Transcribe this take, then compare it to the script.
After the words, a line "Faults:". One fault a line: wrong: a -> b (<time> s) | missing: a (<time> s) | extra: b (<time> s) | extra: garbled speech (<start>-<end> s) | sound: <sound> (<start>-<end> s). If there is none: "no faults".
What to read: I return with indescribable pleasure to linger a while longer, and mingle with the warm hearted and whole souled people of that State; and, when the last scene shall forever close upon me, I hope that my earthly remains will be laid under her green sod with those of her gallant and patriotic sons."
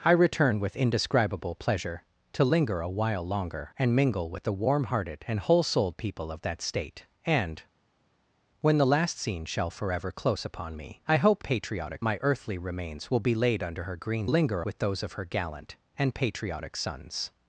I return with indescribable pleasure to linger a while longer, and mingle with the warm hearted and whole souled people of that State; and, when the last scene shall forever close upon me, I hope patriotic my earthly remains will be laid under her green linger with those of her gallant and patriotic sons."
Faults:
wrong: that -> patriotic (11.4 s)
wrong: sod -> linger (14.2 s)